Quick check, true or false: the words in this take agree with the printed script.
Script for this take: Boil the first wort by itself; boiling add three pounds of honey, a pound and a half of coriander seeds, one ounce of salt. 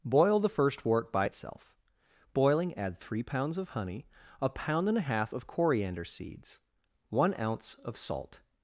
true